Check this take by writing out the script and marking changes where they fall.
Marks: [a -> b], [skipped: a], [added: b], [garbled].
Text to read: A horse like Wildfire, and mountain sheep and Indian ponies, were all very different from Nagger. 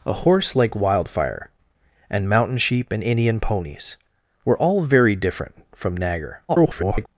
A horse like Wildfire, and mountain sheep and Indian ponies, were all very different from Nagger. [garbled]